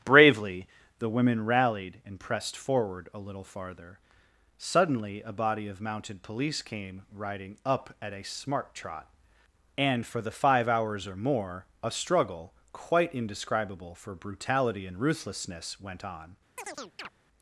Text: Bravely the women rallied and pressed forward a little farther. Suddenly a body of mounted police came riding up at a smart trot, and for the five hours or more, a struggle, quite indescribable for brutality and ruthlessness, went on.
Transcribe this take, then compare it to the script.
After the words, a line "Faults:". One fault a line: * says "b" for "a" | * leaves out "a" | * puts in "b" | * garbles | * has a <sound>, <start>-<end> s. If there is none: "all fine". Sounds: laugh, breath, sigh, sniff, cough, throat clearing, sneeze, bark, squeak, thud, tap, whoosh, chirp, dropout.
Bravely the women rallied and pressed forward a little farther. Suddenly a body of mounted police came riding up at a smart trot, and for the five hours or more, a struggle, quite indescribable for brutality and ruthlessness, went on.
Faults:
* has a chirp, 16.6-17.1 s